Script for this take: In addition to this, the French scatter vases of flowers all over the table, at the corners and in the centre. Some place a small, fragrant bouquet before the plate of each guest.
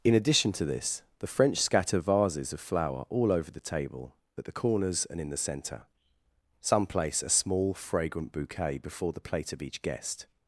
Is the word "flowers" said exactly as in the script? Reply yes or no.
no